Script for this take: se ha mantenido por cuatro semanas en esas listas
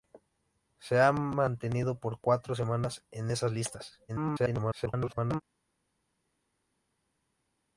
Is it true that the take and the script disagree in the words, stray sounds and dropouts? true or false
true